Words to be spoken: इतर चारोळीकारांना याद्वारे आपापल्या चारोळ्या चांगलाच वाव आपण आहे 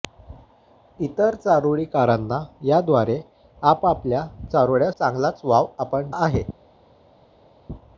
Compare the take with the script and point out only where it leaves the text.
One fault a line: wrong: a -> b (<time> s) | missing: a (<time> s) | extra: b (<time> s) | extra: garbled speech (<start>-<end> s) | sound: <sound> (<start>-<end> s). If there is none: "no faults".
no faults